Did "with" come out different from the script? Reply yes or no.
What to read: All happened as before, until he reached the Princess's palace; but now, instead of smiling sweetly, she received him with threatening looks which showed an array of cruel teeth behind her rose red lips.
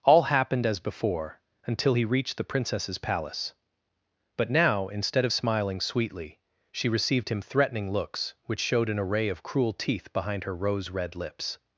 yes